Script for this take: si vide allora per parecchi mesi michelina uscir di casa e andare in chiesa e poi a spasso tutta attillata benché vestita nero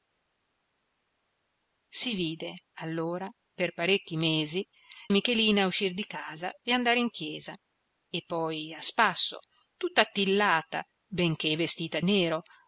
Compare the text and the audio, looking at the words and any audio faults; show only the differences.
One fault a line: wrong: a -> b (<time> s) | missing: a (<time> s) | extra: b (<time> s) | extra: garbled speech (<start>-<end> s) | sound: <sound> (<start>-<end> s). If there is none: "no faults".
no faults